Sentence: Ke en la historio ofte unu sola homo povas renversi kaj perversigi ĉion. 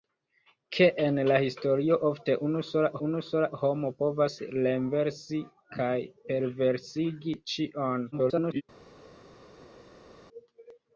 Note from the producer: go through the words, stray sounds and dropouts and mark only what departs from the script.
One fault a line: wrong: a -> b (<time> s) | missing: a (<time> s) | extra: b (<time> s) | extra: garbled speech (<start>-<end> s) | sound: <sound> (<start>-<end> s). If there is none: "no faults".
extra: unu sola (3.1 s)
extra: garbled speech (8.1-8.6 s)